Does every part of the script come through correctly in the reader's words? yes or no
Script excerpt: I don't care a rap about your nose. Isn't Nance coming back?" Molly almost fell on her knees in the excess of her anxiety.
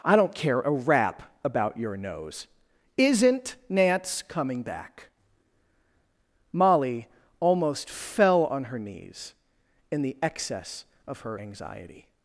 yes